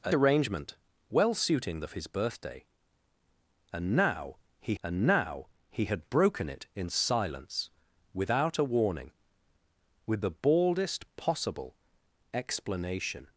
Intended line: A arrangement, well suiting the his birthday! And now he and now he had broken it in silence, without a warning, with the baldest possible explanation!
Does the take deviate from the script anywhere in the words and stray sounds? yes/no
no